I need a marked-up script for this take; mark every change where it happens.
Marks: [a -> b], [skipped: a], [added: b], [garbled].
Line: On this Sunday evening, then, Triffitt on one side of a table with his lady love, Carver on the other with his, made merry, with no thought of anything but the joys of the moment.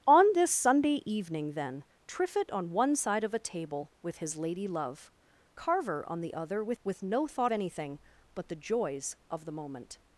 On this Sunday evening, then, Triffitt on one side of a table with his lady love, Carver on the other with [skipped: his, made merry,] with no thought [skipped: of] anything but the joys of the moment.